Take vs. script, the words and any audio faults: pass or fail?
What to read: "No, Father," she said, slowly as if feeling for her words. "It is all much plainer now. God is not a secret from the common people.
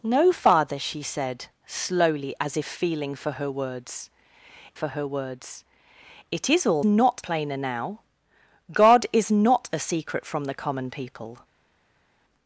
fail